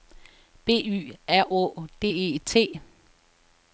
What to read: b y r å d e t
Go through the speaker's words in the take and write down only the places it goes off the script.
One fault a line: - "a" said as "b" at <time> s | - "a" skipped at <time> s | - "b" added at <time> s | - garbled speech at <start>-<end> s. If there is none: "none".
none